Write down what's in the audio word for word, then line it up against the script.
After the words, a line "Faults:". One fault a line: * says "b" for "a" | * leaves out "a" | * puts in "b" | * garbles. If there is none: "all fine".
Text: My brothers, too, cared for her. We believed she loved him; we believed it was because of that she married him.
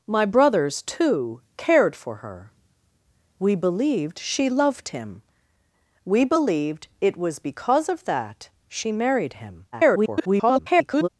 My brothers, too, cared for her. We believed she loved him; we believed it was because of that she married him. [garbled]
Faults:
* garbles